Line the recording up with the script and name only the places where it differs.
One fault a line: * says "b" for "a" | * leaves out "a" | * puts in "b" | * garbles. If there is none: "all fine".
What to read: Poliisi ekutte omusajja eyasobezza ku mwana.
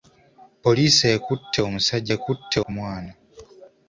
* says "ekutte" for "eyasobezza"